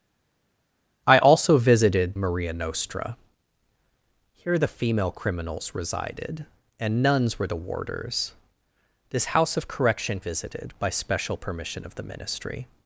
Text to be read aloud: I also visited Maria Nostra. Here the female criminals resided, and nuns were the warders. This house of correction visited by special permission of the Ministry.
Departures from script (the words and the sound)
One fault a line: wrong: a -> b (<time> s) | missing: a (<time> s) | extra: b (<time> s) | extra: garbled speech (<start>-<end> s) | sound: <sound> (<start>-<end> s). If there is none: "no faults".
no faults